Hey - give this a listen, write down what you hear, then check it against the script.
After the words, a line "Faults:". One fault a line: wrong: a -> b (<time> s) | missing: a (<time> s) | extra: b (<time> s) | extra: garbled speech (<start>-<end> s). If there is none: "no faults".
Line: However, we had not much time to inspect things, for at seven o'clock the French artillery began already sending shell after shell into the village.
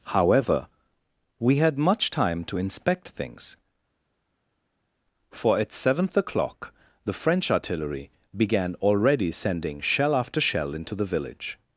However, we had much time to inspect things, for at seventh o'clock the French artillery began already sending shell after shell into the village.
Faults:
missing: not (1.8 s)
wrong: seven -> seventh (5.7 s)